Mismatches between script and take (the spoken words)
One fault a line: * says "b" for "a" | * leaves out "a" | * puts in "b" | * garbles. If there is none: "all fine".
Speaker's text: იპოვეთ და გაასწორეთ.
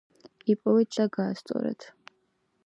all fine